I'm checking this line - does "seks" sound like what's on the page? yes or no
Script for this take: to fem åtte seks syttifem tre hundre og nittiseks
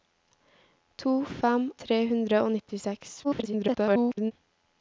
no